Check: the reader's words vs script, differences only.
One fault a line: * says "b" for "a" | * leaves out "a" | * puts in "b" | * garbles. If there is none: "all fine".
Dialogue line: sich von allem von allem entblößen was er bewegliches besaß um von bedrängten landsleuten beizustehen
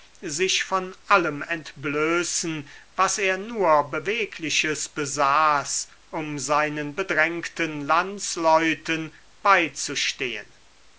* leaves out "von allem"
* puts in "nur"
* says "seinen" for "von"